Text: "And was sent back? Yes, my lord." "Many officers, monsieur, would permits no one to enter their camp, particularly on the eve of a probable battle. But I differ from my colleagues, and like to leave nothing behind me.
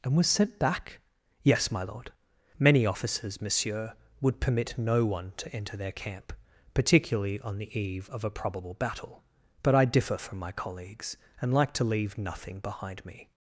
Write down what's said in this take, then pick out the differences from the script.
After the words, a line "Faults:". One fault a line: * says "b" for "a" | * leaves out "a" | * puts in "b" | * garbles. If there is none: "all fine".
"And was sent back? Yes, my lord." "Many officers, monsieur, would permit no one to enter their camp, particularly on the eve of a probable battle. But I differ from my colleagues, and like to leave nothing behind me.
Faults:
* says "permit" for "permits"